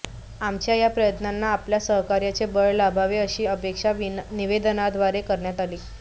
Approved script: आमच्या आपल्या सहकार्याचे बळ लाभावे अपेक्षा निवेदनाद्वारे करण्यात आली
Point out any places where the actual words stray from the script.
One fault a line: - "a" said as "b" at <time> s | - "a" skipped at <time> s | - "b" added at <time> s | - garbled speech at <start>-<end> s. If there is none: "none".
- "या प्रयत्नांना" added at 0.8 s
- "अशी" added at 3.2 s